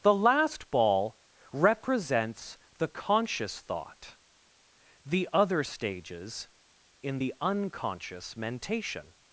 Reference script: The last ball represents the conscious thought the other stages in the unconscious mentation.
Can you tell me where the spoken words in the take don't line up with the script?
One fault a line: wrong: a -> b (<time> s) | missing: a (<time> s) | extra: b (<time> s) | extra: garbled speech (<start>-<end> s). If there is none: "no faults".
no faults